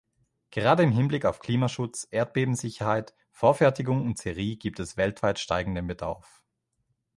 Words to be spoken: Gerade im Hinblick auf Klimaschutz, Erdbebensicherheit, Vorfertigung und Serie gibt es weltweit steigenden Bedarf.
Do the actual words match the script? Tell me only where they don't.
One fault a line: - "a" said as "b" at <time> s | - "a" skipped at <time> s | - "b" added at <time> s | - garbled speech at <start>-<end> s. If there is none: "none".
none